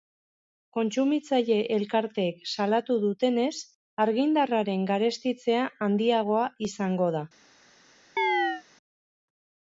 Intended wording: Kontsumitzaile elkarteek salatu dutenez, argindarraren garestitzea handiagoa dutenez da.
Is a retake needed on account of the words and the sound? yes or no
yes